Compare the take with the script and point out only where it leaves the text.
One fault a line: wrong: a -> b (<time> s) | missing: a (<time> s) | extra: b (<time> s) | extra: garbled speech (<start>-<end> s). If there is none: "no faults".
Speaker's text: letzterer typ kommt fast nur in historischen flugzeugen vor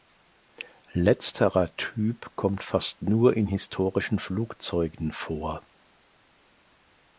no faults